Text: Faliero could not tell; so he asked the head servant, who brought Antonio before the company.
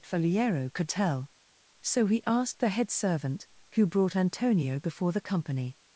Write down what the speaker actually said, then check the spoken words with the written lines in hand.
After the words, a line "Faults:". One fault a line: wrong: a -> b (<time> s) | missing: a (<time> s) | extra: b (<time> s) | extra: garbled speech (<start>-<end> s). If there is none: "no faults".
Faliero could tell; so he asked the head servant, who brought Antonio before the company.
Faults:
missing: not (0.9 s)